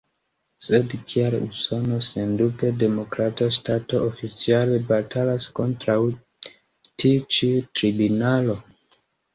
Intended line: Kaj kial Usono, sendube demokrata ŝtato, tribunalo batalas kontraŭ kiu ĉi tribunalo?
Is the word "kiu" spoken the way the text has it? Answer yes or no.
no